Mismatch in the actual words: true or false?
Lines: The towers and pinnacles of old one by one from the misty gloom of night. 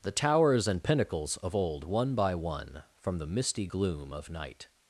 false